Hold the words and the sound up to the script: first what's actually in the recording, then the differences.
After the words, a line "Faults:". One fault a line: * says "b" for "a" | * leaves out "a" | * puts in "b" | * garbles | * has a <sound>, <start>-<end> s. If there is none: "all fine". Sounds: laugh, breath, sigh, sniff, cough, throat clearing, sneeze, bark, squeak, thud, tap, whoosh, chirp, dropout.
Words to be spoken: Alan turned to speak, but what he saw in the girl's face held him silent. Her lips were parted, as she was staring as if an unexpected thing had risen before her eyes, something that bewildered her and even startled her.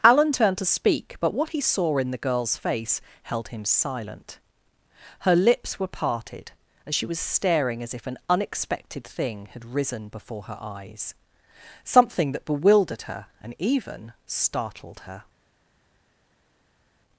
Alan turned to speak, but what he saw in the girl's face held him silent. Her lips were parted, as she was staring as if an unexpected thing had risen before her eyes, something that bewildered her and even startled her.
Faults:
all fine